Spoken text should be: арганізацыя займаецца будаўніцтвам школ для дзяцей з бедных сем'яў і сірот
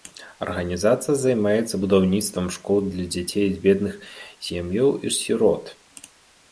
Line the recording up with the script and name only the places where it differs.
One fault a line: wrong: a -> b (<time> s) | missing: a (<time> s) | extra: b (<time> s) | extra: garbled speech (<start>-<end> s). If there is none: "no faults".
no faults